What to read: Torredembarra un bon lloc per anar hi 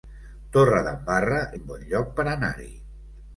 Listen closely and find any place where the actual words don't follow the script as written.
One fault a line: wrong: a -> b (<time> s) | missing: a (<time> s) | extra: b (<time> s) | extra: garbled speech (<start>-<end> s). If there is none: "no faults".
no faults